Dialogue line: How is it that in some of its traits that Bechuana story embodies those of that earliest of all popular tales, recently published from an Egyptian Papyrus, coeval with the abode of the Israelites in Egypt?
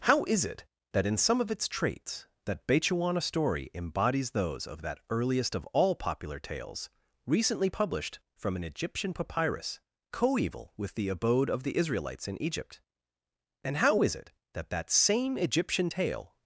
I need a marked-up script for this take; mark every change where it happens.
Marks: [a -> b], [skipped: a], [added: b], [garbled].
How is it that in some of its traits that Bechuana story embodies those of that earliest of all popular tales, recently published from an Egyptian Papyrus, coeval with the abode of the Israelites in Egypt? [added: and how is it that that same Egyptian tale]